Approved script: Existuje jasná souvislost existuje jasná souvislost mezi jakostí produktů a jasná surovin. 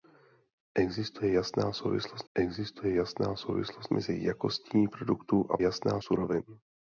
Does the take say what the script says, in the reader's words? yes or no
yes